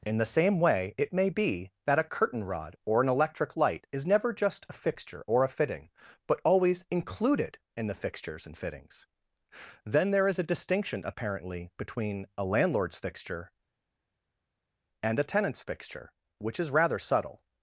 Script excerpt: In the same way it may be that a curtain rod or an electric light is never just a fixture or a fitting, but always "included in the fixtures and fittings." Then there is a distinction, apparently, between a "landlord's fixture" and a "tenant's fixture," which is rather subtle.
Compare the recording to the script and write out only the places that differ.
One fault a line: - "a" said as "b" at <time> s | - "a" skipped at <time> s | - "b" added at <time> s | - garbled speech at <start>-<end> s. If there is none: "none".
none